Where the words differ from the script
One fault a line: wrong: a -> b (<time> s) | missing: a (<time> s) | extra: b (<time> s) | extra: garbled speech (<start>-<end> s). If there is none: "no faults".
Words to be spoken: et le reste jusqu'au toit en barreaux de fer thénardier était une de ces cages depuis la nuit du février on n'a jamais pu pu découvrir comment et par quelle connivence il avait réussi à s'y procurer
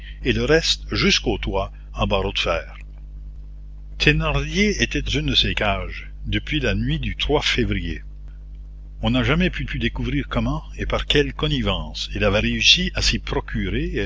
no faults